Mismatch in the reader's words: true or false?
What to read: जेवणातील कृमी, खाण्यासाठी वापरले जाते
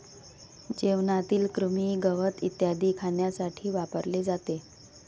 true